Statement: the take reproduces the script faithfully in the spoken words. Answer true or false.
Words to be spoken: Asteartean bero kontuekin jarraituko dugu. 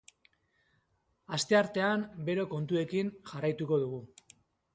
true